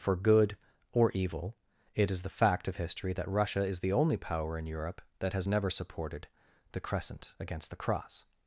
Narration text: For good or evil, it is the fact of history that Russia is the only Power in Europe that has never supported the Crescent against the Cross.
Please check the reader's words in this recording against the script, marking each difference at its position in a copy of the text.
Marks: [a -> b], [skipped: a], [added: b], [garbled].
For good or evil, it is the fact of history that Russia is the only Power in Europe that has never supported the Crescent against the Cross.